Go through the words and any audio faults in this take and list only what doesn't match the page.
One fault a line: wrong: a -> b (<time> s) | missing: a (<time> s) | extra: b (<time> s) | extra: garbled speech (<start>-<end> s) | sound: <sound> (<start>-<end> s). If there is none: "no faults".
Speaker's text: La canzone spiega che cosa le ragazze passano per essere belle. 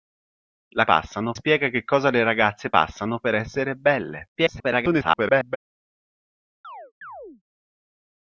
wrong: canzone -> passano (0.8 s)
extra: garbled speech (4.4-5.6 s)
sound: chirp (6.6-7.4 s)